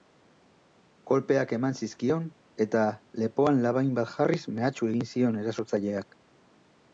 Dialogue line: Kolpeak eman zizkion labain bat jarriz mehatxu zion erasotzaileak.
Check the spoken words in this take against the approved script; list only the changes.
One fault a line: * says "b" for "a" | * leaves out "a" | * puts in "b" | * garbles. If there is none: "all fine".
* puts in "eta lepoan"
* puts in "egin"